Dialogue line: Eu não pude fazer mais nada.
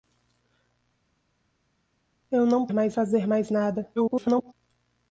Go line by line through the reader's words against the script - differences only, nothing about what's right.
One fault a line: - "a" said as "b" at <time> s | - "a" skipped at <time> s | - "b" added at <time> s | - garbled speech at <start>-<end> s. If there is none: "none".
- "pude" said as "mais" at 2.7 s
- garbled speech at 4.0-4.5 s